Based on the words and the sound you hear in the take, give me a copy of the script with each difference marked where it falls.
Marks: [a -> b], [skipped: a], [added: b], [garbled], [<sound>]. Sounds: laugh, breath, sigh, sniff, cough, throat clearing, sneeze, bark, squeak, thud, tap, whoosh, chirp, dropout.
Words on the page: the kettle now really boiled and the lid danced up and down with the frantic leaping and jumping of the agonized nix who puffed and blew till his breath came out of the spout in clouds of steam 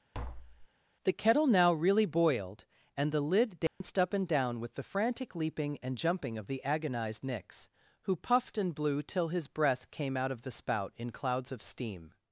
[tap] the kettle now really boiled and the lid danced [dropout] up and down with the frantic leaping and jumping of the agonized nix who puffed and blew till his breath came out of the spout in clouds of steam